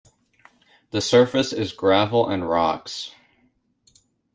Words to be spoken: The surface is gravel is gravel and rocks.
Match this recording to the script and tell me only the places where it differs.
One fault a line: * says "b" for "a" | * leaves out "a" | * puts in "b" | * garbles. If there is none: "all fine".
* leaves out "is gravel"